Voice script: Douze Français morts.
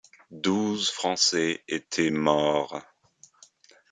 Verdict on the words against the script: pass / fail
fail